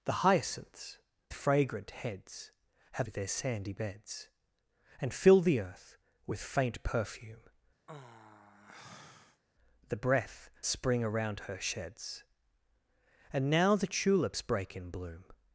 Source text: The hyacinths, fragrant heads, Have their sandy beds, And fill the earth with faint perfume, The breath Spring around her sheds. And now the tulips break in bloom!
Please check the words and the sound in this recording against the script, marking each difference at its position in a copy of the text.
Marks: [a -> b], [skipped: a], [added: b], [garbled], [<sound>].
The hyacinths, fragrant heads, Have their sandy beds, And fill the earth with faint perfume, [sigh] The breath Spring around her sheds. And now the tulips break in bloom!